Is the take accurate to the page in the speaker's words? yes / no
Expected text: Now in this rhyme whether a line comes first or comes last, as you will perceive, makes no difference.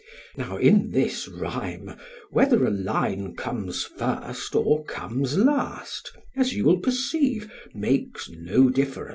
yes